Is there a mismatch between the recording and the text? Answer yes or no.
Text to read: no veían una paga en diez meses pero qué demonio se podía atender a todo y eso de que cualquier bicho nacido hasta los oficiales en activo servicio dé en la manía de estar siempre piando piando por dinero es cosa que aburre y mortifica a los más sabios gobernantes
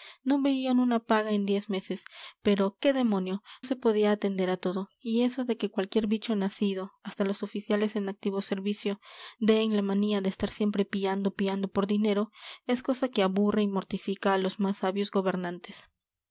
no